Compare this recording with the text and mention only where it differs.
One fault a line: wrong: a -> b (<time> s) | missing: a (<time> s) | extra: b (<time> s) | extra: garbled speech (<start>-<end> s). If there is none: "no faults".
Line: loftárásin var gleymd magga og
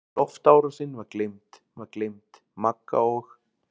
extra: var gleymd (1.8 s)